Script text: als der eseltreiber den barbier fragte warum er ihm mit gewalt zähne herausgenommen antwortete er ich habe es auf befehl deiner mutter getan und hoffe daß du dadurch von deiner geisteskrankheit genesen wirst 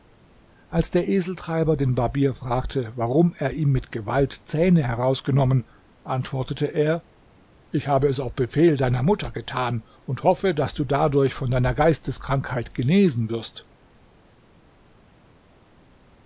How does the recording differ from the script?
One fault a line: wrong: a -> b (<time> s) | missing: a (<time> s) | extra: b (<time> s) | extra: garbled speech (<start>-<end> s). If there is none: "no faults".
no faults